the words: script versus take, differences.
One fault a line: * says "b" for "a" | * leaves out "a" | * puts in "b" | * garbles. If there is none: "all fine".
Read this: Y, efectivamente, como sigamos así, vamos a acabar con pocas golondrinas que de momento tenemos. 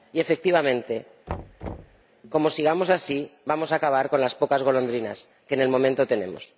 * puts in "las"